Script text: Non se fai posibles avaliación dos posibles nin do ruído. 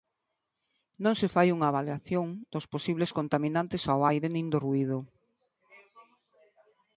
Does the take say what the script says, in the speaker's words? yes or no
no